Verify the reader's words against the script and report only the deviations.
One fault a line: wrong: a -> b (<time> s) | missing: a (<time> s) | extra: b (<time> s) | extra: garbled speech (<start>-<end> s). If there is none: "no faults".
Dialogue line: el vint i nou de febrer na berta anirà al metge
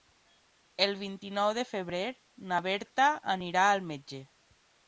no faults